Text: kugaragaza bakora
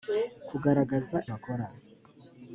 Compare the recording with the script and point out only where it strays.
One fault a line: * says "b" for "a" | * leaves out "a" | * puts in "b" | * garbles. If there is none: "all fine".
all fine